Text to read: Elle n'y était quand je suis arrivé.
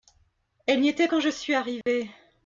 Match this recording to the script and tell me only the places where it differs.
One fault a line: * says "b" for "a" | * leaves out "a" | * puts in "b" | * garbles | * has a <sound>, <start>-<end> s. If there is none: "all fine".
* has a dropout, 1.8-1.9 s